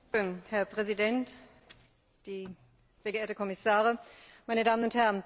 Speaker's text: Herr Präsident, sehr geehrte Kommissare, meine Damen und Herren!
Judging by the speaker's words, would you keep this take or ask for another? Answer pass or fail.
pass